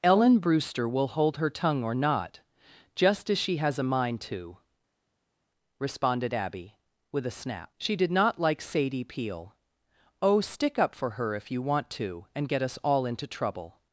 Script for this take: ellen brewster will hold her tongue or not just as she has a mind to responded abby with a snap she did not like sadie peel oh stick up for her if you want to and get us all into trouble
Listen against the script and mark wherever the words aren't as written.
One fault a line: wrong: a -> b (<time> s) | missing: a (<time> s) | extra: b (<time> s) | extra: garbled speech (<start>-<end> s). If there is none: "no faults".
no faults